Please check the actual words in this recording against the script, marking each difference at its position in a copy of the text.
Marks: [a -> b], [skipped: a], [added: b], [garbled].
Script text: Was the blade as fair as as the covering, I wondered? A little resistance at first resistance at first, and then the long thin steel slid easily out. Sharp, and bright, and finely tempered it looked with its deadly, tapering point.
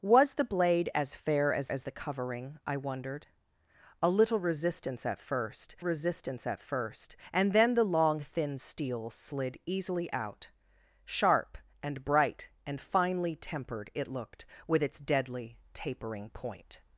Was the blade as fair as as the covering, I wondered? A little resistance at first resistance at first, and then the long thin steel slid easily out. Sharp, and bright, and finely tempered it looked with its deadly, tapering point.